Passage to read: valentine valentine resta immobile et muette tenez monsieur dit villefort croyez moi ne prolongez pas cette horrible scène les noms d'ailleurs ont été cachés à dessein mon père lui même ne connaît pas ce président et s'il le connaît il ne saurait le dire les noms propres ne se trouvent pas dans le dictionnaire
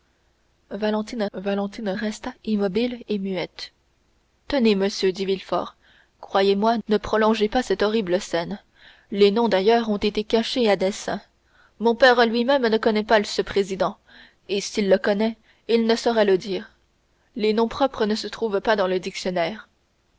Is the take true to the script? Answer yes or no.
yes